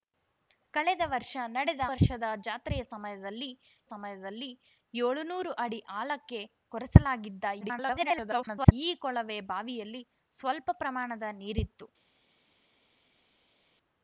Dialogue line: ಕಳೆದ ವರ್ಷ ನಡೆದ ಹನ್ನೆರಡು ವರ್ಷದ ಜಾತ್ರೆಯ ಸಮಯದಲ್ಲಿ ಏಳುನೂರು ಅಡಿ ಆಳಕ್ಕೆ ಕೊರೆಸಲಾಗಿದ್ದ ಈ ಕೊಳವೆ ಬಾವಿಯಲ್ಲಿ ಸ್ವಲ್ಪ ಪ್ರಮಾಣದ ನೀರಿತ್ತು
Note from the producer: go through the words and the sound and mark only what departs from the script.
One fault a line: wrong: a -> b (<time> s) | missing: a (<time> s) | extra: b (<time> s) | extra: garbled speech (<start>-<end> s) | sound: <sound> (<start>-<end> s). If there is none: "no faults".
missing: ಹನ್ನೆರಡು (1.8 s)
extra: ಸಮಯದಲ್ಲಿ (3.9 s)
extra: garbled speech (7.6-8.7 s)